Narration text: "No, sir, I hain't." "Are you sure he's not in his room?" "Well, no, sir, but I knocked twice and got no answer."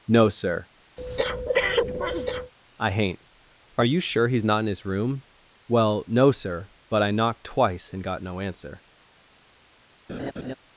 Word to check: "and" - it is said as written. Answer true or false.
true